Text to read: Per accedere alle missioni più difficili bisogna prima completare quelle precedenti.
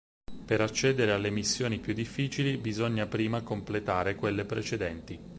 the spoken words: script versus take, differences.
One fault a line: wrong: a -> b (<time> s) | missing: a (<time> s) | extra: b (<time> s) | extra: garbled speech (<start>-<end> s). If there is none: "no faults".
no faults